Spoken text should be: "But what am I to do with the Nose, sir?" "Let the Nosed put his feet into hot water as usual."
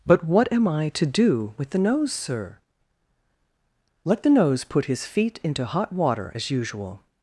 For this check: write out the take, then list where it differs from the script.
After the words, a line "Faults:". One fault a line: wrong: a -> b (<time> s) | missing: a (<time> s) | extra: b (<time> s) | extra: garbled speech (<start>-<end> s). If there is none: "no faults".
"But what am I to do with the Nose, sir?" "Let the Nose put his feet into hot water as usual."
Faults:
wrong: Nosed -> Nose (4.3 s)